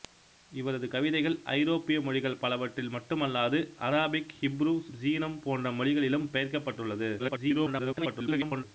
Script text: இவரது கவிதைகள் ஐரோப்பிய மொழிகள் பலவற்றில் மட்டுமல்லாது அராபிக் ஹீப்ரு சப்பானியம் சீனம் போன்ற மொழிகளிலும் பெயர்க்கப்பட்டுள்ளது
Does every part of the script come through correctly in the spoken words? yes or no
no